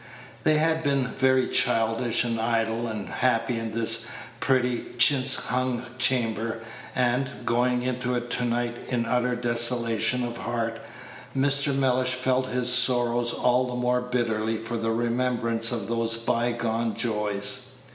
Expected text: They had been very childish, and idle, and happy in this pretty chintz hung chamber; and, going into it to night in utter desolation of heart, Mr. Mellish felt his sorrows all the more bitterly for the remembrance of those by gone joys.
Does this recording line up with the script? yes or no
yes